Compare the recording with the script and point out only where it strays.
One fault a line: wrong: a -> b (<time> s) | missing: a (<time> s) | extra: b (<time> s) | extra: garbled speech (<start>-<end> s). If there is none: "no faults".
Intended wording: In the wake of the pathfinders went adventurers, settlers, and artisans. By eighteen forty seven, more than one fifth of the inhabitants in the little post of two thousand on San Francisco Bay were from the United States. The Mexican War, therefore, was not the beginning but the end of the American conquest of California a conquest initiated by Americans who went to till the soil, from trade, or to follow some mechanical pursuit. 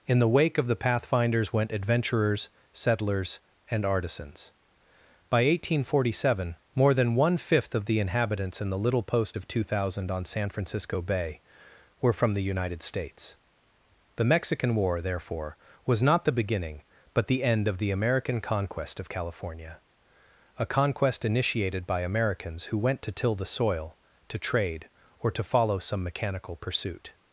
wrong: from -> to (24.3 s)